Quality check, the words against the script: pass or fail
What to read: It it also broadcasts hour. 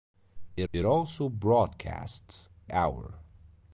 pass